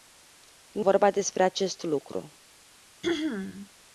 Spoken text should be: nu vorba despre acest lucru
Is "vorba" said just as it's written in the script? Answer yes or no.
yes